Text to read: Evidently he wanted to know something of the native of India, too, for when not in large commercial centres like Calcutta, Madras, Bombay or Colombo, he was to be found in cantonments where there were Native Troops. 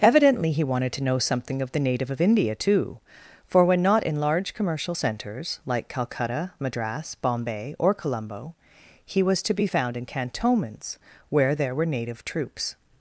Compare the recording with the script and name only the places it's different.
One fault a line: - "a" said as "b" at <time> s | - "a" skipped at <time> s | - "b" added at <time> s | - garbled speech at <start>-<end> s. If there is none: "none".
none